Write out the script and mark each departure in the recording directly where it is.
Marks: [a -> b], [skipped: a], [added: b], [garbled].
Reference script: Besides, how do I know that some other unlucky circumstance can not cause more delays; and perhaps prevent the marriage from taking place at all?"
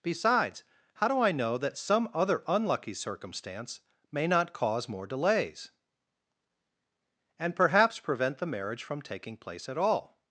Besides, how do I know that some other unlucky circumstance [can -> may] not cause more delays; and perhaps prevent the marriage from taking place at all?"